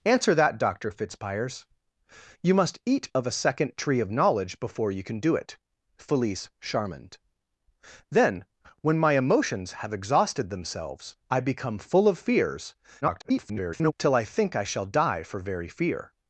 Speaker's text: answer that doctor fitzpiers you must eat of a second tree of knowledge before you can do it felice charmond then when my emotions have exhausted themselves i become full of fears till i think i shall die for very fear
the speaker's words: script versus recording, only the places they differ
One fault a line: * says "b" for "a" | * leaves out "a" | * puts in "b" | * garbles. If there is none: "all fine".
* garbles